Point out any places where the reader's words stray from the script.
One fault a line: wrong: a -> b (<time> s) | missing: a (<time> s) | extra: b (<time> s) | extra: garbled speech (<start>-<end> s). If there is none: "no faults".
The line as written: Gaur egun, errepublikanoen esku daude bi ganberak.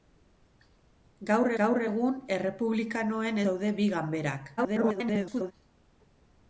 extra: gaur (1.6 s)
missing: esku (3.4 s)
extra: garbled speech (4.6-5.5 s)